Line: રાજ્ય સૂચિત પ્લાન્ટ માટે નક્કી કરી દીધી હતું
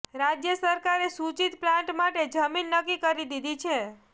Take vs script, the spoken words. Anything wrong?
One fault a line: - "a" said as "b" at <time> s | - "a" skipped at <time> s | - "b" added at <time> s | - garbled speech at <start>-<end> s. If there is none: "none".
- "સરકારે" added at 0.6 s
- "જમીન" added at 2.3 s
- "હતું" said as "છે" at 3.6 s